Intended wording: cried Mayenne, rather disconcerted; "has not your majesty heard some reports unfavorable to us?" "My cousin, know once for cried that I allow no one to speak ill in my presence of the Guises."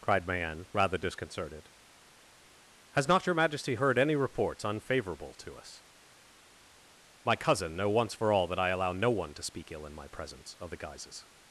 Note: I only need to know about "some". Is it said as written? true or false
false